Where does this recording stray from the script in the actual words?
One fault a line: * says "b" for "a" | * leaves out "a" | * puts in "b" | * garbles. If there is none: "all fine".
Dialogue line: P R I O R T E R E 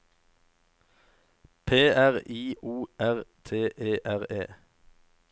all fine